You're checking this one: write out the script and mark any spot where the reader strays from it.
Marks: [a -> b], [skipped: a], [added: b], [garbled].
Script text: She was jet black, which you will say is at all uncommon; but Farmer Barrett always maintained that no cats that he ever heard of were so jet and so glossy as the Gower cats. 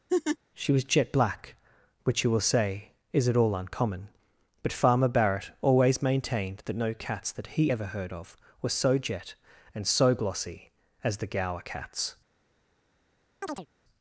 She was jet black, which you will say is at all uncommon; but Farmer Barrett always maintained that no cats that he ever heard of were so jet and so glossy as the Gower cats.